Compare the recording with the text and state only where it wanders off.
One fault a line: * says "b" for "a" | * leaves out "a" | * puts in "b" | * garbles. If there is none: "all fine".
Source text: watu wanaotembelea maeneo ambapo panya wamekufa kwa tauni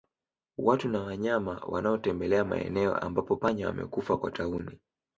* puts in "na wanyama"